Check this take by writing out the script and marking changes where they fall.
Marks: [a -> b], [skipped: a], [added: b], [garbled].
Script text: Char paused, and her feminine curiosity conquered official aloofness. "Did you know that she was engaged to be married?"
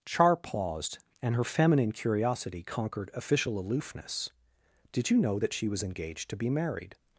Char paused, and her feminine curiosity conquered official aloofness. "Did you know that she was engaged to be married?"